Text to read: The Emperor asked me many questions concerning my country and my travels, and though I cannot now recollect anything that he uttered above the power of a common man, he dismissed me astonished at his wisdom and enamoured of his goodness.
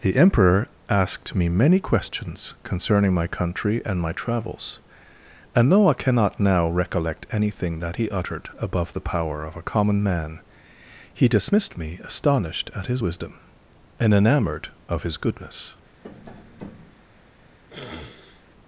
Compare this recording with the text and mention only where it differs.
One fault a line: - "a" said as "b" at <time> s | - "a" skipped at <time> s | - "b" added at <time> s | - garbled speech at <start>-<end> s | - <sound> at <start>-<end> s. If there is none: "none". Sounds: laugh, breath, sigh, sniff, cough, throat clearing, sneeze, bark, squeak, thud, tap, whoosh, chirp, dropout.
- tap at 16.0-17.0 s
- sniff at 17.7-18.4 s